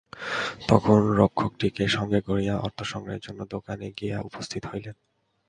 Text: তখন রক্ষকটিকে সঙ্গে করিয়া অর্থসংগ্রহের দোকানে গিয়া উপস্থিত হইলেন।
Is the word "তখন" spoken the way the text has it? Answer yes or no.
yes